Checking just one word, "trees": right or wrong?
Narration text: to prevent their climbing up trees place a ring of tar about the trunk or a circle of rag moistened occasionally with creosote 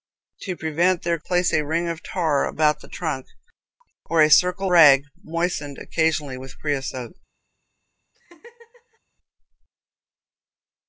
wrong